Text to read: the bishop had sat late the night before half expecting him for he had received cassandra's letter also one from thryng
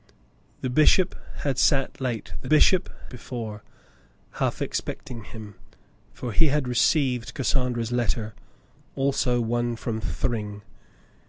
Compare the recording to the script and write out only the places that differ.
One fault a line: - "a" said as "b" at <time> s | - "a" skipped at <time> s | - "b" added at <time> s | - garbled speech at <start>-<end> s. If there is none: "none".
- "night" said as "bishop" at 2.5 s